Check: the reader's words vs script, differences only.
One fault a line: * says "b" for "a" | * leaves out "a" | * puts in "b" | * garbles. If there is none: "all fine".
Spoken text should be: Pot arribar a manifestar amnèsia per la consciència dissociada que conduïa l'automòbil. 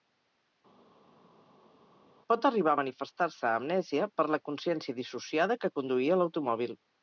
* puts in "se"